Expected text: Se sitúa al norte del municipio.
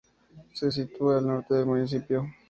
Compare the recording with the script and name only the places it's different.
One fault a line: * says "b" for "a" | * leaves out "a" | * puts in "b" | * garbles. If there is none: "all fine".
all fine